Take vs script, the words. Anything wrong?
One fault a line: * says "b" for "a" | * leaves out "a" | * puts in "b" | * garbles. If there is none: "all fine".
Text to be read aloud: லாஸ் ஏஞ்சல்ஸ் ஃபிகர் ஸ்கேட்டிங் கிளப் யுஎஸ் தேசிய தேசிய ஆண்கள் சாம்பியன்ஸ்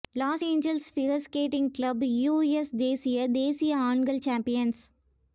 all fine